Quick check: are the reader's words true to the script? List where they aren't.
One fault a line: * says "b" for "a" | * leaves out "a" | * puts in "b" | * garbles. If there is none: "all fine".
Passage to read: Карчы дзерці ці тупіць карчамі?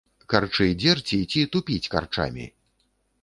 all fine